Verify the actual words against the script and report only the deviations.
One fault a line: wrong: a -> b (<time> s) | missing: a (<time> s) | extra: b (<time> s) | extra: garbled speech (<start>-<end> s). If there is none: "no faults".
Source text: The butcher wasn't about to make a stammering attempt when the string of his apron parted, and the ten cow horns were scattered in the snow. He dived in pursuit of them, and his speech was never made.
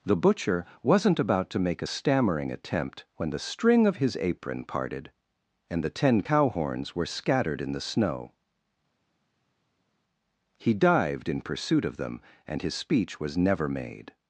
no faults